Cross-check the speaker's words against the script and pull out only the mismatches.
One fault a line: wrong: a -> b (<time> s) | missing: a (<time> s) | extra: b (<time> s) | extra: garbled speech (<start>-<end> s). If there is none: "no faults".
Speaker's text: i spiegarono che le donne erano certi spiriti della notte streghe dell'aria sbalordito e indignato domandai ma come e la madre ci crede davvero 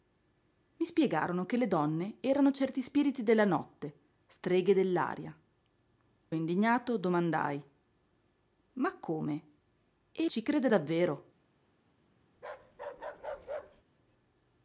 missing: sbalordito (5.3 s)
missing: la madre (10.3 s)